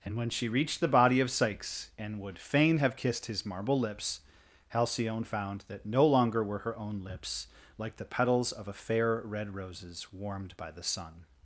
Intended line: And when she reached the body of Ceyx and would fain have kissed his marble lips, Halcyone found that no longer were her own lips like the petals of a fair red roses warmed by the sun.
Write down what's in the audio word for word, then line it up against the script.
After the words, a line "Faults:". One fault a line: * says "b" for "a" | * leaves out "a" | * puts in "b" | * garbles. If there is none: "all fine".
And when she reached the body of Ceyx and would fain have kissed his marble lips, Halcyone found that no longer were her own lips like the petals of a fair red roses warmed by the sun.
Faults:
all fine